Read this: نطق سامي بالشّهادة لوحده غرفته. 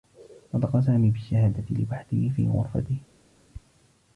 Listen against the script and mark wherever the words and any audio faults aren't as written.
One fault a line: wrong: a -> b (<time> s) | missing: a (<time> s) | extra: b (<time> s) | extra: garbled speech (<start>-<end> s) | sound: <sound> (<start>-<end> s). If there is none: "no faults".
extra: في (2.4 s)